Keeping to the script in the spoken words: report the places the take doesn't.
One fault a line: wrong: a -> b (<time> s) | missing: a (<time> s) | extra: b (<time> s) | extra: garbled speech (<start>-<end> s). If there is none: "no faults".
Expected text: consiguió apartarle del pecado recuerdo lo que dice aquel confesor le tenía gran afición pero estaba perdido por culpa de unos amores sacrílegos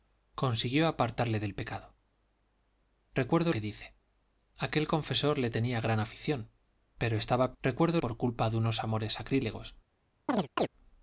missing: lo (3.5 s)
wrong: perdido -> recuerdo (7.6 s)